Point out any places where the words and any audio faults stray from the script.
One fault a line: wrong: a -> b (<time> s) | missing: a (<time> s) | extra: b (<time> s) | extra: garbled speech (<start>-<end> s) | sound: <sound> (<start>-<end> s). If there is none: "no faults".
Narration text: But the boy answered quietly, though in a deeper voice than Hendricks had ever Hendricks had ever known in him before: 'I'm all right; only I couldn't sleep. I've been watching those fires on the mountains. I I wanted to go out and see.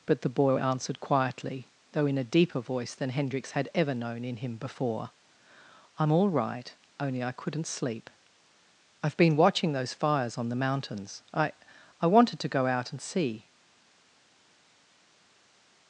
missing: Hendricks had ever (3.9 s)